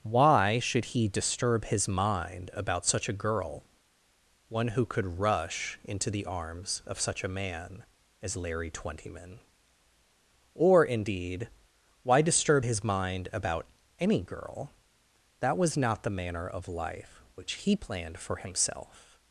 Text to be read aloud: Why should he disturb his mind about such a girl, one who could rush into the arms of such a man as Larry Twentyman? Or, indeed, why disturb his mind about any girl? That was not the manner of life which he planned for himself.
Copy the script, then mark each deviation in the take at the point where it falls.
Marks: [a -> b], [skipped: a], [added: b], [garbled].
Why should he disturb his mind about such a girl, one who could rush into the arms of such a man as Larry Twentyman? Or, indeed, why disturb his mind about any girl? That was not the manner of life which he planned for himself.